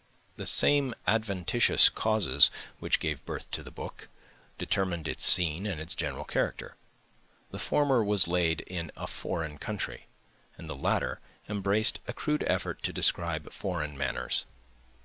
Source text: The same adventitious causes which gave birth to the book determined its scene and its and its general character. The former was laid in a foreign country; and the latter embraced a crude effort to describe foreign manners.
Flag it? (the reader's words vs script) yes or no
yes